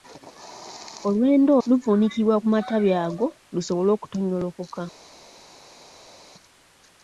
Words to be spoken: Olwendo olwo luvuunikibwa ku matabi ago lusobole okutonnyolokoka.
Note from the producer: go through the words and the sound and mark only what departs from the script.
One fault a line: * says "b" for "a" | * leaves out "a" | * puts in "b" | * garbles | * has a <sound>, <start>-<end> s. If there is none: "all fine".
* leaves out "olwo"